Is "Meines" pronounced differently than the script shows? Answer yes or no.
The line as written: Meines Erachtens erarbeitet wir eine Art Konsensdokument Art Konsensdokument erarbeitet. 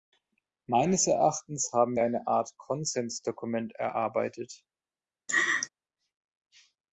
no